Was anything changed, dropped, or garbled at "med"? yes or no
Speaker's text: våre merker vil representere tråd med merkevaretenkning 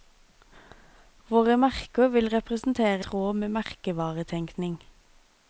no